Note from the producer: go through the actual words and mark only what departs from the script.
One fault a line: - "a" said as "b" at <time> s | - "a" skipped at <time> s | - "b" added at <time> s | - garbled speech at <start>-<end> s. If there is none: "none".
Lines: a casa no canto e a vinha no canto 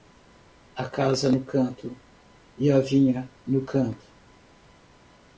none